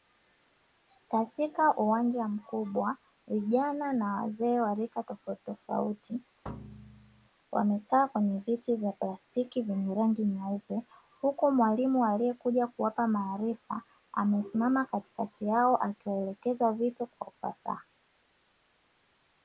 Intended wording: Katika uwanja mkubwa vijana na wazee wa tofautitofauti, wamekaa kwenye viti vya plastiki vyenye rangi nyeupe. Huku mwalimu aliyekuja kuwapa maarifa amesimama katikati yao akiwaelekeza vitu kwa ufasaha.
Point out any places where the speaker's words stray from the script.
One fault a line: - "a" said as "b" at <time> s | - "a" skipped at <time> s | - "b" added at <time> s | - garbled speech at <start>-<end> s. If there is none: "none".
- "rika" added at 4.7 s